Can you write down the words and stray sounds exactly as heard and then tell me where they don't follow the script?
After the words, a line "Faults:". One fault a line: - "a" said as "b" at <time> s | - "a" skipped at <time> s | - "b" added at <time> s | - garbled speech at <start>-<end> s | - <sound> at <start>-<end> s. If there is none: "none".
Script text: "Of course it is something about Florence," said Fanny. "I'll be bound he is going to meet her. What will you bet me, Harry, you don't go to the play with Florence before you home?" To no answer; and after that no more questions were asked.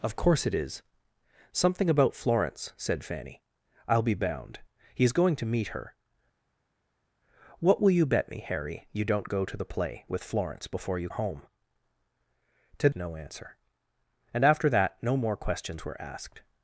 "Of course it is something about Florence," said Fanny. "I'll be bound he is going to meet her. What will you bet me, Harry, you don't go to the play with Florence before you home?" To no answer; and after that no more questions were asked.
Faults:
none